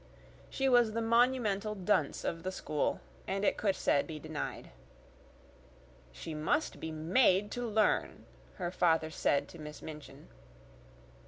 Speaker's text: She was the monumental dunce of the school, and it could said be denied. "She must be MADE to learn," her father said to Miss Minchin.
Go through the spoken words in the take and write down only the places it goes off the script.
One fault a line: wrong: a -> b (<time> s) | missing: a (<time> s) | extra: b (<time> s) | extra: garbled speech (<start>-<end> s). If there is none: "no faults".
no faults